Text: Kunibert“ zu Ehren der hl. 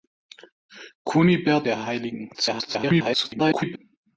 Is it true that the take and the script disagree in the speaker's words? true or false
true